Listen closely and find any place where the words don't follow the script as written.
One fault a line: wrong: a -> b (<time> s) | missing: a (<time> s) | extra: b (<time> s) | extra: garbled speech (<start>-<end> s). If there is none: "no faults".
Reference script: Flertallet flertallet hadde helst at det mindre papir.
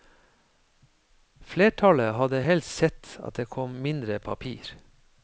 missing: flertallet (2.1 s)
extra: sett (2.8 s)
extra: kom (3.5 s)